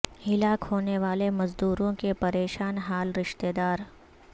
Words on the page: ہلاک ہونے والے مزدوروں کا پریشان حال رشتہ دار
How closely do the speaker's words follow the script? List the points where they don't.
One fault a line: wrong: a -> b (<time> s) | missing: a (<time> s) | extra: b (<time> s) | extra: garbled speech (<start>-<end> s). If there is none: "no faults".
wrong: کا -> کے (2.0 s)